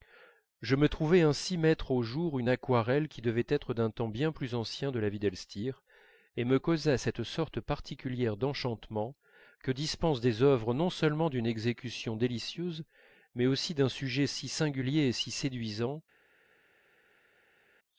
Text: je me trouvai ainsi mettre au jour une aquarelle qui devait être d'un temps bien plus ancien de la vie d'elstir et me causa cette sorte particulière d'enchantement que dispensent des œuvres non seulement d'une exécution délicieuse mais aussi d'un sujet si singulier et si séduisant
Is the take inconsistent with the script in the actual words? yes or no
no